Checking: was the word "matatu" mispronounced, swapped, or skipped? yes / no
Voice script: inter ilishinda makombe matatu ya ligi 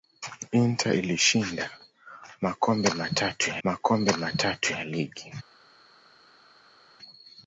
no